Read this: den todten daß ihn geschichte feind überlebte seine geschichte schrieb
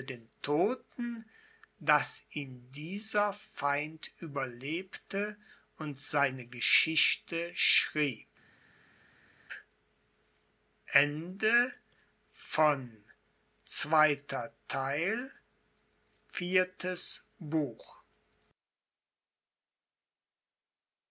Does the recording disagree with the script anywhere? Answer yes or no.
yes